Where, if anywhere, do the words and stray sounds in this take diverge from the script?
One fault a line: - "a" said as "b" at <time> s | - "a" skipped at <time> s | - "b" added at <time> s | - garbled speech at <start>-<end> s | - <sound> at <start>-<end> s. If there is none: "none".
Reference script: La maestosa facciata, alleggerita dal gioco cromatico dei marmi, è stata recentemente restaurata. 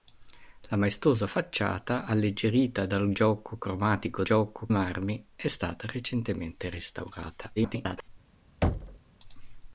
- "dei" said as "gioco" at 4.2 s
- garbled speech at 7.6-8.1 s
- thud at 8.6-9.0 s